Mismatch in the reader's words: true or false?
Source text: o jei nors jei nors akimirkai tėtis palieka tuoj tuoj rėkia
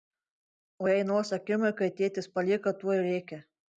true